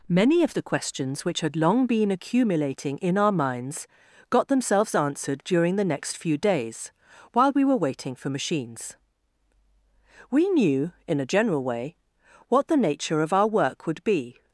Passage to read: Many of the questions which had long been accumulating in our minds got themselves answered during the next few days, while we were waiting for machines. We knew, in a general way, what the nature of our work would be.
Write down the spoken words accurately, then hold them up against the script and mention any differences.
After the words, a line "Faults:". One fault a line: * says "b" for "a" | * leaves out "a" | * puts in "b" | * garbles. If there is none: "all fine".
Many of the questions which had long been accumulating in our minds got themselves answered during the next few days, while we were waiting for machines. We knew, in a general way, what the nature of our work would be.
Faults:
all fine